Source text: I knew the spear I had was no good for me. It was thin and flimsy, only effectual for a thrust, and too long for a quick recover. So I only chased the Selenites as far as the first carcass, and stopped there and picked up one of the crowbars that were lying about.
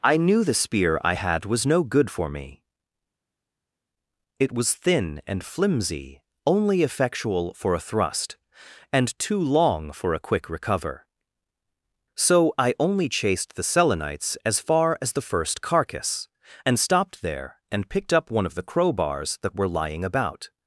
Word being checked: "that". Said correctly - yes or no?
yes